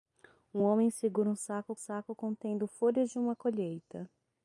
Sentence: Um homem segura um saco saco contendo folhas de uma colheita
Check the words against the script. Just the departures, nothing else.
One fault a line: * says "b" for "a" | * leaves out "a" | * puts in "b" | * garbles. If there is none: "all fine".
all fine